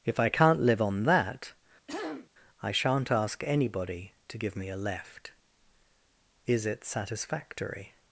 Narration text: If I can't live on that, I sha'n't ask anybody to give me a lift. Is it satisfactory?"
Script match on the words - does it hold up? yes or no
no